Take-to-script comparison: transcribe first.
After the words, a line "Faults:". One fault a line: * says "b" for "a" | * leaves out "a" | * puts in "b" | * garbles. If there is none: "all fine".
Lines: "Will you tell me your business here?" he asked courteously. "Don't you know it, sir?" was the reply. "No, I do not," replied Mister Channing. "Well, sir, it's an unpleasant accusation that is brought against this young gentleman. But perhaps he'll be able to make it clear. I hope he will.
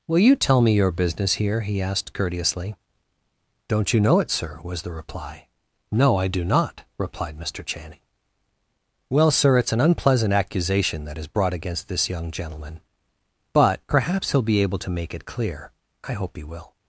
"Will you tell me your business here?" he asked courteously. "Don't you know it, sir?" was the reply. "No, I do not," replied Mister Channing. "Well, sir, it's an unpleasant accusation that is brought against this young gentleman. But perhaps he'll be able to make it clear. I hope he will.
Faults:
all fine